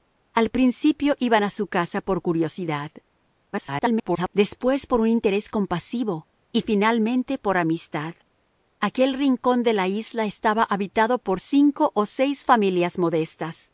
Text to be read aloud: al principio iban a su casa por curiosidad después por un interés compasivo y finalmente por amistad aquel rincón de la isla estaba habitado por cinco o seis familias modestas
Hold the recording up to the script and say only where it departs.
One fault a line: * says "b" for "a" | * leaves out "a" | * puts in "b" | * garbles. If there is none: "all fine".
* garbles